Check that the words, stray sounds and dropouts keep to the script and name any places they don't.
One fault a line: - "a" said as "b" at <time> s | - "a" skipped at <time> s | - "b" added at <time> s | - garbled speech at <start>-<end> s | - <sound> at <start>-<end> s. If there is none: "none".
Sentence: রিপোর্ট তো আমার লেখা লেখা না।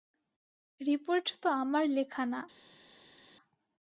- "লেখা" skipped at 2.2 s